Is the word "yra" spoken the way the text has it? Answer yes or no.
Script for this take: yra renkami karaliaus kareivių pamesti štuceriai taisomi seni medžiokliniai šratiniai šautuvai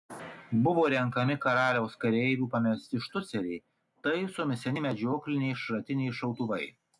no